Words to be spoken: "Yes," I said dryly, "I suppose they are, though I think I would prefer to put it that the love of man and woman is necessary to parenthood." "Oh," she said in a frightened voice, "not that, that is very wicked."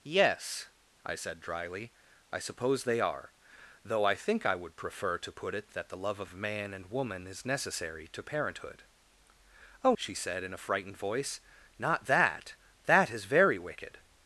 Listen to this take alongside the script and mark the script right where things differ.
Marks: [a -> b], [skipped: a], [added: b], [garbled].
"Yes," I said dryly, "I suppose they are, though I think I would prefer to put it that the love of man and woman is necessary to parenthood." "Oh," she said in a frightened voice, "not that, that is very wicked."